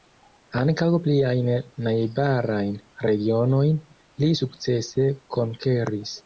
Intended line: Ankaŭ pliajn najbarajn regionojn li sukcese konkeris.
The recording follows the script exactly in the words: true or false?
true